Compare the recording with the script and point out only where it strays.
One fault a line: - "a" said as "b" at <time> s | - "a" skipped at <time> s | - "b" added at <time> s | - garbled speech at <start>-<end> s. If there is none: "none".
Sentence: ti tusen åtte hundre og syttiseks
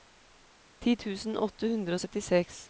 none